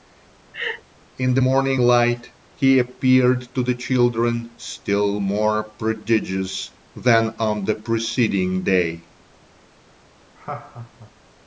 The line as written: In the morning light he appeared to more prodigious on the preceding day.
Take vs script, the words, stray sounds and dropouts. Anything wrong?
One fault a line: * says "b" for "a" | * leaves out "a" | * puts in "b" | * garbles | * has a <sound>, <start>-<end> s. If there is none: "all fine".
* has a laugh, 0.5-0.8 s
* puts in "the children still"
* puts in "than"
* has a laugh, 10.4-11.1 s